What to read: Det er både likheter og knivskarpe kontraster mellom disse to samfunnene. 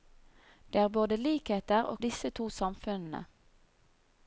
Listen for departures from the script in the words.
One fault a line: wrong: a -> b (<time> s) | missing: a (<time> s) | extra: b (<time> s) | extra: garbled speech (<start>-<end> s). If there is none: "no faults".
missing: knivskarpe kontraster mellom (2.0 s)